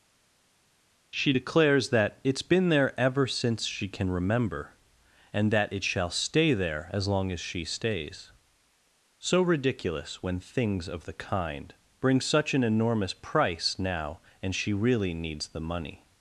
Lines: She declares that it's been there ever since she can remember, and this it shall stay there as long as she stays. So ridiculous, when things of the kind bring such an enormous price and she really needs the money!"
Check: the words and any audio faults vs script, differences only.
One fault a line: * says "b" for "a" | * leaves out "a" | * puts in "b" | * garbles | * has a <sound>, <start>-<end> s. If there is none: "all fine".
* says "that" for "this"
* puts in "now"